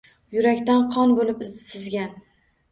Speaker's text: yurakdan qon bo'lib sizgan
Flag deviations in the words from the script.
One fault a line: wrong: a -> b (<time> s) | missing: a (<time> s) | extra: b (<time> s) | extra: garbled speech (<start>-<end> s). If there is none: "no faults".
no faults